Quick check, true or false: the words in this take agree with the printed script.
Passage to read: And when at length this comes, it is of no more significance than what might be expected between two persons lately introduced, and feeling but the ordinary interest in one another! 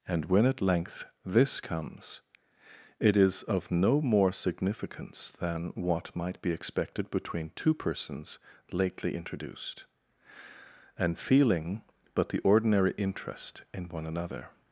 true